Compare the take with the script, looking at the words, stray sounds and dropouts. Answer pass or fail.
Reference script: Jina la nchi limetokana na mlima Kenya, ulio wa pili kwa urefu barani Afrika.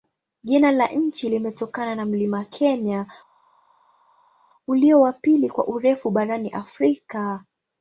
pass